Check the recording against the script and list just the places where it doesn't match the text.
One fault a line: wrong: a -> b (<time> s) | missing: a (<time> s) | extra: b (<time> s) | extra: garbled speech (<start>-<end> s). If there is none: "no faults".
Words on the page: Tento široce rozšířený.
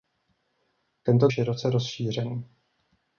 no faults